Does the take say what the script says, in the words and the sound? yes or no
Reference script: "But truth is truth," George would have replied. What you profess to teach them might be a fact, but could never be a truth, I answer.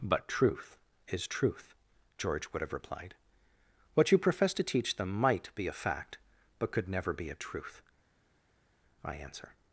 yes